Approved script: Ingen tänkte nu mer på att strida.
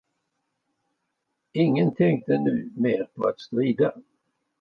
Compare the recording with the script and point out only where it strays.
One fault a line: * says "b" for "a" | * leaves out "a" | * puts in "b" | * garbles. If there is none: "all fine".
all fine